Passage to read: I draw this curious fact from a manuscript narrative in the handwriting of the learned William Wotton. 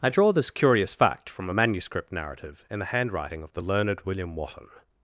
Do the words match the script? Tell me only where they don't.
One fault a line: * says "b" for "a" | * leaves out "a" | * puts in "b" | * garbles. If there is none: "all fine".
all fine